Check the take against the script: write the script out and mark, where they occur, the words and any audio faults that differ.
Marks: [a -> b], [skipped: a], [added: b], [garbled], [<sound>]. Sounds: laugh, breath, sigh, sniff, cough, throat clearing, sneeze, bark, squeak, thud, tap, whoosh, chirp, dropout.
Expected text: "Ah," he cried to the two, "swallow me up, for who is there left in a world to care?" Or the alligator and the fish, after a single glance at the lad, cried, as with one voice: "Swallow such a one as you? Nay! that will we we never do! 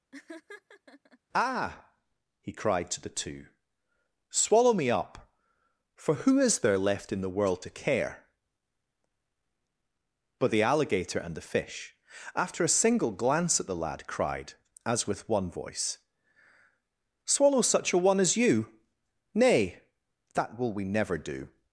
[laugh] "Ah," he cried to the two, "swallow me up, for who is there left in [a -> the] world to care?" [Or -> But] the alligator and the fish, after a single glance at the lad, cried, as with one voice: "Swallow such a one as you? Nay! that will we [skipped: we] never do!